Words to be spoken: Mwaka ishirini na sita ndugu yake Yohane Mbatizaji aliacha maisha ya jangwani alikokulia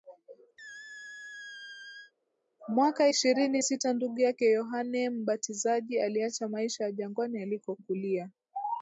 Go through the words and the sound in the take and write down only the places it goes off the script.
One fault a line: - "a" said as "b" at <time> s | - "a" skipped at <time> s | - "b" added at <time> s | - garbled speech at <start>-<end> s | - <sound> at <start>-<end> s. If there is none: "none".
- squeak at 0.6-2.1 s
- "na" skipped at 3.6 s